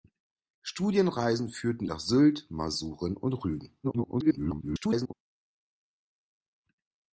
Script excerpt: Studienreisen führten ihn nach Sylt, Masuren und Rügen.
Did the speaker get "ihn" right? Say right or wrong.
wrong